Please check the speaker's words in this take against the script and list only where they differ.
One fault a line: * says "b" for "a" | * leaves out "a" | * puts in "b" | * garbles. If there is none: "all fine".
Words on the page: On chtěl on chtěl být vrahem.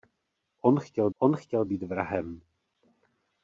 all fine